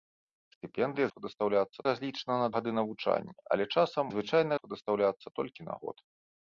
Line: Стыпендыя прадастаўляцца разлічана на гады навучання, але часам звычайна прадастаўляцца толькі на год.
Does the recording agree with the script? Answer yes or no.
yes